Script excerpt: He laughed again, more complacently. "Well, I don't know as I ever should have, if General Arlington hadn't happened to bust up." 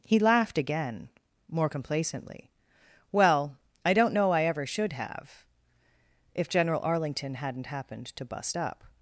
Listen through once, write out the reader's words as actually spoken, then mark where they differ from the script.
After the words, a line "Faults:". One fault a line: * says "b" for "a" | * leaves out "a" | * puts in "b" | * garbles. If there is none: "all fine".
He laughed again, more complacently. "Well, I don't know I ever should have, if General Arlington hadn't happened to bust up."
Faults:
* leaves out "as"